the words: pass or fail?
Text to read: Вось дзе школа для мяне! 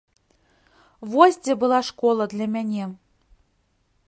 fail